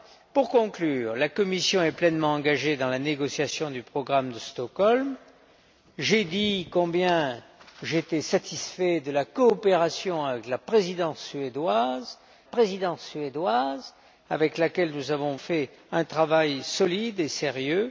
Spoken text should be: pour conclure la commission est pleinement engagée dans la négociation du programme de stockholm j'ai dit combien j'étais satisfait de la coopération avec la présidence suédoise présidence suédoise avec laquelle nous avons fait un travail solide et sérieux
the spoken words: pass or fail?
pass